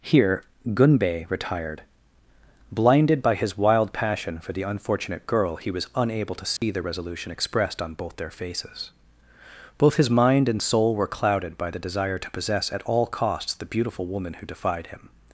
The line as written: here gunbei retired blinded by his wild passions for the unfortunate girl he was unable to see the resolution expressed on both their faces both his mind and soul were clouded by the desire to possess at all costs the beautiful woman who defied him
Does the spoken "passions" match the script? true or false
false